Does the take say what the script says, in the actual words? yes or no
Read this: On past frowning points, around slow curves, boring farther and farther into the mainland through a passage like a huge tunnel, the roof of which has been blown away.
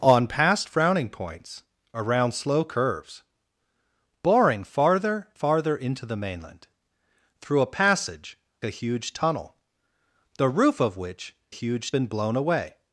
no